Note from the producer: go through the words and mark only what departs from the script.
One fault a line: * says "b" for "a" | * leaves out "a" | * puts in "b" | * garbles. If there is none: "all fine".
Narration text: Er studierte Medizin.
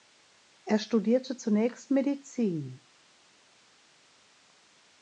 * puts in "zunächst"